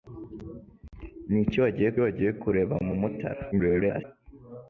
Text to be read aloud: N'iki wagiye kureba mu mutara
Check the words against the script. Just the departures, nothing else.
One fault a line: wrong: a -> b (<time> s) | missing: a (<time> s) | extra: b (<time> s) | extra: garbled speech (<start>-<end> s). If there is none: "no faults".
extra: wagiye (2.0 s)
extra: garbled speech (3.5-4.0 s)